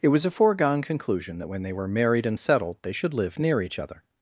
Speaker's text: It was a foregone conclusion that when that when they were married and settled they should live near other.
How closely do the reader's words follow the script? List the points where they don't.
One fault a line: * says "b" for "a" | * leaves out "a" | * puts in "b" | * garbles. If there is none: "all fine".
* leaves out "that when"
* puts in "each"